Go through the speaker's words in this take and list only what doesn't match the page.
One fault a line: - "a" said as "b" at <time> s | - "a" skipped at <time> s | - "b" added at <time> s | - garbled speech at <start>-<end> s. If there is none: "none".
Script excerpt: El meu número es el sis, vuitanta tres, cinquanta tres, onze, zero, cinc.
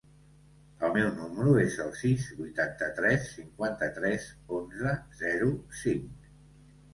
none